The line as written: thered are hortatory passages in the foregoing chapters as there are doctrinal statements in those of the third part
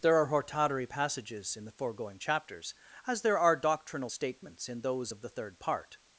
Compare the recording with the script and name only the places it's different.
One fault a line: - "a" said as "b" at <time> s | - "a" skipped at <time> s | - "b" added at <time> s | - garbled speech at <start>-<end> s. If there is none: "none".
- "thered" said as "there" at 0.0 s